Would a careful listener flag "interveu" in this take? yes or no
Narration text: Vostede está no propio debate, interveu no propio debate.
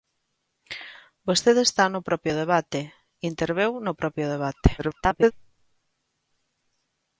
no